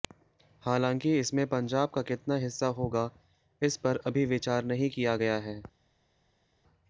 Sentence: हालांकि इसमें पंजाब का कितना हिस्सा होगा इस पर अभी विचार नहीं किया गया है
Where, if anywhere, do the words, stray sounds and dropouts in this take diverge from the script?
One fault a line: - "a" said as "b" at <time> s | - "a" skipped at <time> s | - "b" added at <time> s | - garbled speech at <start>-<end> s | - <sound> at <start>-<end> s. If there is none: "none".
none